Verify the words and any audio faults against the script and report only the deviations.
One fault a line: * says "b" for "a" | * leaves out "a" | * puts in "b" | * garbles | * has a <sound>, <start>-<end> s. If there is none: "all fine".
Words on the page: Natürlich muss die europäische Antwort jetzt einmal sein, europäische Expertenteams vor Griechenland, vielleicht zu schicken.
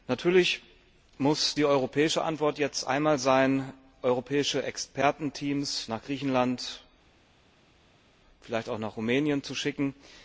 * says "nach" for "vor"
* puts in "auch nach Rumänien"